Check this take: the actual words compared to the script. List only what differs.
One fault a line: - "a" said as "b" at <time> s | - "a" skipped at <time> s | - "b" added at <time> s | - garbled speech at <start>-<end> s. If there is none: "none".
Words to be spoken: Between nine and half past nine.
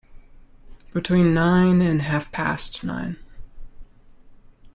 none